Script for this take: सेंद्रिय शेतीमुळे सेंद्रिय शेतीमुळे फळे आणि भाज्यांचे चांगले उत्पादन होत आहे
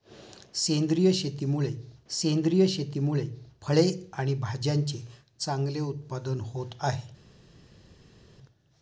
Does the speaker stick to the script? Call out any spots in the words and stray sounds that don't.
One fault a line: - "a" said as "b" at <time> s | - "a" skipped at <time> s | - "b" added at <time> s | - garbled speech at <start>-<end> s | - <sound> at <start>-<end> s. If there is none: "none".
none